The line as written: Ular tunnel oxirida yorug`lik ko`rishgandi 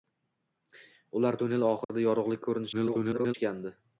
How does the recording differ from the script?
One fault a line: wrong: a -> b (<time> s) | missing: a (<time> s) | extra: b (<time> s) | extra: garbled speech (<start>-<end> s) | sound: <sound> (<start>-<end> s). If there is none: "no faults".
sound: dropout (1.8-1.9 s)
extra: garbled speech (2.7-3.3 s)